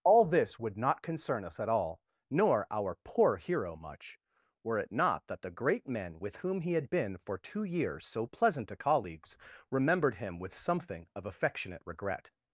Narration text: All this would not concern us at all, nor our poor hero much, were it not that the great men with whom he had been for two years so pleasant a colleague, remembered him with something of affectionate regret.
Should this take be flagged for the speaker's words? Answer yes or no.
yes